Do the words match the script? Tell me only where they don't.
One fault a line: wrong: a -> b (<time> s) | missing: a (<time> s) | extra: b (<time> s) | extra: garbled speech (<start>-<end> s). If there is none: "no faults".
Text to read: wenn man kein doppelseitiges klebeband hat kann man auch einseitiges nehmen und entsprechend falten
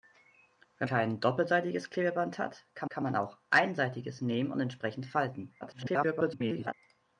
missing: man (0.9 s)
extra: kann (2.9 s)
extra: garbled speech (5.6-6.7 s)